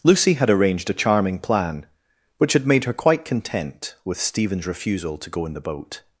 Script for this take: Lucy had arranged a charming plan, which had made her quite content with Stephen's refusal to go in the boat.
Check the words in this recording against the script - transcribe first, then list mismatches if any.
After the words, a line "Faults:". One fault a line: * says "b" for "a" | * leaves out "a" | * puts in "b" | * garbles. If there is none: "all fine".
Lucy had arranged a charming plan, which had made her quite content with Stephen's refusal to go in the boat.
Faults:
all fine